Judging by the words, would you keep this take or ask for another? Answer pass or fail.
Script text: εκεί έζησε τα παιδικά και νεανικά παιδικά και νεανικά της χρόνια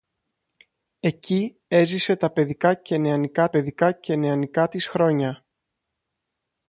pass